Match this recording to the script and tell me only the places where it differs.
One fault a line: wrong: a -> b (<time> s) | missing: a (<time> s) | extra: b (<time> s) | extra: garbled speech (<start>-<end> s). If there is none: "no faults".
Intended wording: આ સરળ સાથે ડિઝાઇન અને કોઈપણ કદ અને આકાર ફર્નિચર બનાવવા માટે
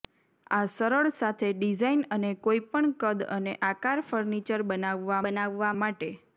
extra: બનાવવા (5.2 s)